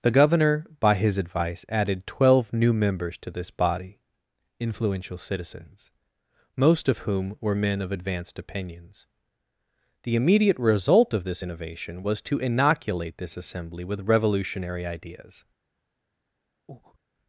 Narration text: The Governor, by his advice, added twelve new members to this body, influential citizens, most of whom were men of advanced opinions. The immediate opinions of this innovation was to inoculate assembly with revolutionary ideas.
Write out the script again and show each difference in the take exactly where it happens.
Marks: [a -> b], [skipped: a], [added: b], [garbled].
The Governor, by his advice, added twelve new members to this body, influential citizens, most of whom were men of advanced opinions. The immediate [opinions -> result] of this innovation was to inoculate [added: this] assembly with revolutionary ideas.